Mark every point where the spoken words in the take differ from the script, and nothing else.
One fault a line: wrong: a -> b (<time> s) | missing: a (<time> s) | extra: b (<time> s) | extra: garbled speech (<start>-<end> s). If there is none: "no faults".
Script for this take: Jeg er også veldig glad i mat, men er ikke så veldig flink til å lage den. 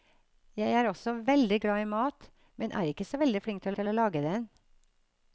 extra: til (3.8 s)